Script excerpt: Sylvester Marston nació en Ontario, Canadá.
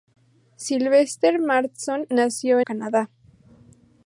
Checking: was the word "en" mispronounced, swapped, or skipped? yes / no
yes